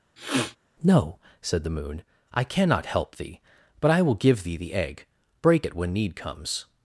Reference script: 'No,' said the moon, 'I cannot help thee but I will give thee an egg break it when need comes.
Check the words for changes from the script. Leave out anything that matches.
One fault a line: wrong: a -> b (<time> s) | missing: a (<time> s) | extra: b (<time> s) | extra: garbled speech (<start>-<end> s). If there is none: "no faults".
wrong: an -> the (4.6 s)